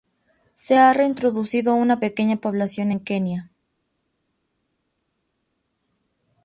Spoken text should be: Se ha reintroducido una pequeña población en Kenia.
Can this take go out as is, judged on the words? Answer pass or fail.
pass